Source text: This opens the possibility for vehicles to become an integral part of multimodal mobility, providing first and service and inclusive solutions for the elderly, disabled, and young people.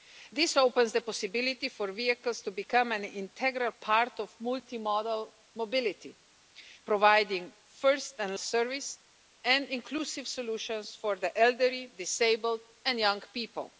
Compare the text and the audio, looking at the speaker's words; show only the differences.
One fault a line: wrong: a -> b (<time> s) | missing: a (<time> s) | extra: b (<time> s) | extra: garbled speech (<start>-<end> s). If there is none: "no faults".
no faults